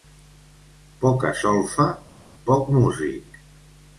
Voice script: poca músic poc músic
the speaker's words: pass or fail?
fail